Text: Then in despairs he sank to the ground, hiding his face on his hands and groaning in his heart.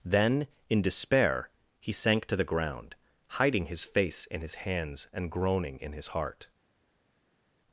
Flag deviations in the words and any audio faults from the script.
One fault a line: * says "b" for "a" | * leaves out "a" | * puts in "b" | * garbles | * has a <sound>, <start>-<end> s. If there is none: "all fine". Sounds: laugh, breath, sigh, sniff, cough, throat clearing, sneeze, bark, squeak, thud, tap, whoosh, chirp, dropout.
* says "despair" for "despairs"
* says "in" for "on"